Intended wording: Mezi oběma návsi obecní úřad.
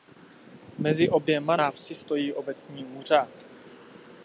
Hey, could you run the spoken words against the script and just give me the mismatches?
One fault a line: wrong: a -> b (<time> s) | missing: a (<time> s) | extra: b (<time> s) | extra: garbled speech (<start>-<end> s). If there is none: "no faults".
extra: stojí (2.0 s)